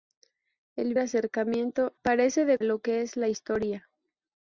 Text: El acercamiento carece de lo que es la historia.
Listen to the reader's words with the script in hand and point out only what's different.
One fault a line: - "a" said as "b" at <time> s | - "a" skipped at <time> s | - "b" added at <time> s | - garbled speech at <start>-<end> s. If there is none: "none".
none